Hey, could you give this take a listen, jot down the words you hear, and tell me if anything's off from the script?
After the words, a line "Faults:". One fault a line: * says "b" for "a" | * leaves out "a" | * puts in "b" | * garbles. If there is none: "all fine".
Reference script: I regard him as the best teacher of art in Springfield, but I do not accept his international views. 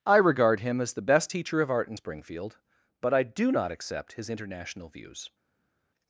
I regard him as the best teacher of art in Springfield, but I do not accept his international views.
Faults:
all fine